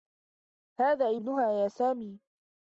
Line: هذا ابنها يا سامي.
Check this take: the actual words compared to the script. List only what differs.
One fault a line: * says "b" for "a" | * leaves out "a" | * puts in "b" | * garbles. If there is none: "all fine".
all fine